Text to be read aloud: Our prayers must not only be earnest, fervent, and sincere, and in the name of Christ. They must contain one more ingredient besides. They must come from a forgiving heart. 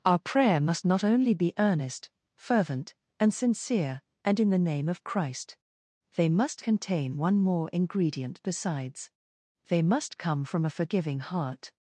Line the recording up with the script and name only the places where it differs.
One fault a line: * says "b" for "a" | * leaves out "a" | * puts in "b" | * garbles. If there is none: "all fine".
* says "prayer" for "prayers"